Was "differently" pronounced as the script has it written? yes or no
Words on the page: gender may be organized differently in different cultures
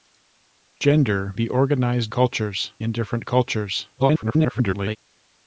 no